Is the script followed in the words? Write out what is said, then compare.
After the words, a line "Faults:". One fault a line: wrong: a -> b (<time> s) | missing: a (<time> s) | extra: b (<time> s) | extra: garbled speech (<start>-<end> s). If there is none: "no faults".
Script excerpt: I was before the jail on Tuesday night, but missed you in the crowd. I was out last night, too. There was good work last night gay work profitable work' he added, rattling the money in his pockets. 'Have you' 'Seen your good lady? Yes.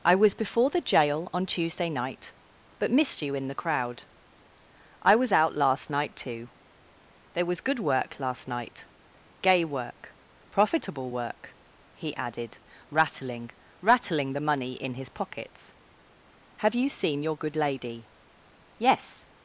I was before the jail on Tuesday night, but missed you in the crowd. I was out last night, too. There was good work last night gay work profitable work' he added, rattling rattling the money in his pockets. 'Have you' 'Seen your good lady? Yes.
Faults:
extra: rattling (13.8 s)